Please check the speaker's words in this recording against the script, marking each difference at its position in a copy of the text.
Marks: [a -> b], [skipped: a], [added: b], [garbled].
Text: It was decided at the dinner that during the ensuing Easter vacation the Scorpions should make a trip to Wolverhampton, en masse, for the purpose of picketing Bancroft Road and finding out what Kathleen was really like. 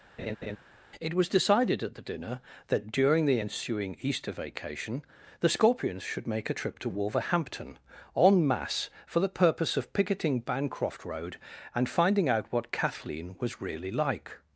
It was decided at the dinner that during the ensuing Easter vacation the Scorpions should make a trip to Wolverhampton, en masse, for the purpose of picketing Bancroft Road and finding out what Kathleen was really like.